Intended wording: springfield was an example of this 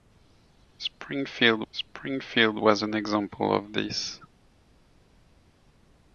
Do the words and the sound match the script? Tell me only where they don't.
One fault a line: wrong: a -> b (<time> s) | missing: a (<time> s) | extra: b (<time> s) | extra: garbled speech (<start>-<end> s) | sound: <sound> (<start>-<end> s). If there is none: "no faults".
extra: springfield (1.7 s)